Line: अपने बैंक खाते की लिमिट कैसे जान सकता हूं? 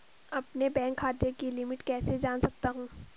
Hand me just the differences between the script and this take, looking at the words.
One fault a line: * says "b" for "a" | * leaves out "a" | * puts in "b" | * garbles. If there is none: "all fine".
all fine